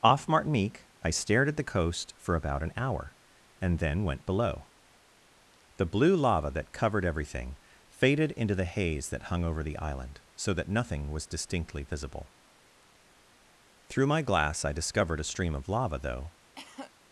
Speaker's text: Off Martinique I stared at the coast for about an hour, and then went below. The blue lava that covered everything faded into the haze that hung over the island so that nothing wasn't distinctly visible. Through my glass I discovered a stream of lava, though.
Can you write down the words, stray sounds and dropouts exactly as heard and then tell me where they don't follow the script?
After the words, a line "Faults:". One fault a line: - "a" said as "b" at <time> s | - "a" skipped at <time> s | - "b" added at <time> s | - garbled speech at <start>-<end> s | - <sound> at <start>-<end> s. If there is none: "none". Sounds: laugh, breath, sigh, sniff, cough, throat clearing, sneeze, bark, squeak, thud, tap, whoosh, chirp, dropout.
Off Martinique I stared at the coast for about an hour, and then went below. The blue lava that covered everything faded into the haze that hung over the island so that nothing was distinctly visible. Through my glass I discovered a stream of lava, though.
Faults:
- "wasn't" said as "was" at 11.1 s
- cough at 16.6-16.9 s